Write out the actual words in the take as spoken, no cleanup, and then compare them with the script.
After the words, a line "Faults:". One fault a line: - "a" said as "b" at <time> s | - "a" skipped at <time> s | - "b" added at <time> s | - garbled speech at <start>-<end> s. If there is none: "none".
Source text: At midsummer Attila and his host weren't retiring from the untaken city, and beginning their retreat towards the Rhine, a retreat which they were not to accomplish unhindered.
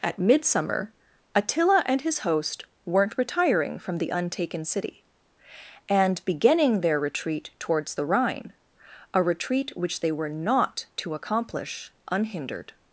At midsummer Attila and his host weren't retiring from the untaken city, and beginning their retreat towards the Rhine, a retreat which they were not to accomplish unhindered.
Faults:
none